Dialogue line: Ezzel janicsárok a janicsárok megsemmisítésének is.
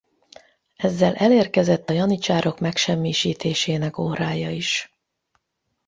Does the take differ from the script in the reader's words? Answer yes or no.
yes